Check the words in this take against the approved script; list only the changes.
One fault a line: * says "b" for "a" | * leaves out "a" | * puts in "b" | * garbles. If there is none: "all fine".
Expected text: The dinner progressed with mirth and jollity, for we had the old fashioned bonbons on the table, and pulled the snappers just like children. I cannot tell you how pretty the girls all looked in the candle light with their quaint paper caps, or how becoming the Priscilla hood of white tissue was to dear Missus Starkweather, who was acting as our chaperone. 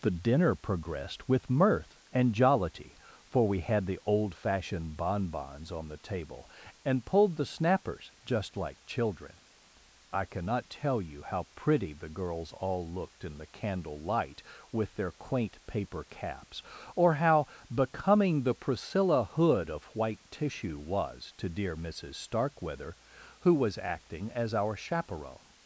all fine